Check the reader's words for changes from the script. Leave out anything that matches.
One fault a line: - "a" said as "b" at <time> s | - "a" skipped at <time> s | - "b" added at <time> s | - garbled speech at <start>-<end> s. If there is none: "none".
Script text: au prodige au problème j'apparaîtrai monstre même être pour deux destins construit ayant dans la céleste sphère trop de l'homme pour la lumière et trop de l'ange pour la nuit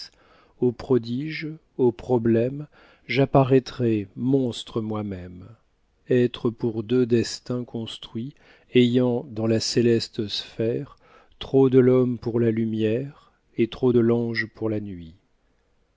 - "moi" added at 4.8 s